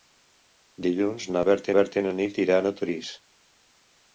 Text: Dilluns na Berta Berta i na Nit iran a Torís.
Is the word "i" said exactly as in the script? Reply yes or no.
yes